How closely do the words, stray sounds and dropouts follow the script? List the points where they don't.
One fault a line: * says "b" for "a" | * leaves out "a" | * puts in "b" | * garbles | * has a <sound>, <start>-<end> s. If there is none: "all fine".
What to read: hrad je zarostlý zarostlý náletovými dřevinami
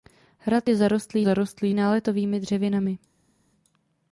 all fine